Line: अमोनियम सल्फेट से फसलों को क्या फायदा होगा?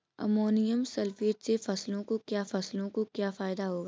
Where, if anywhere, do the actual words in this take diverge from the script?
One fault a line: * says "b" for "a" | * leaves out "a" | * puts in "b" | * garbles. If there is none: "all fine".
* puts in "फसलों को क्या"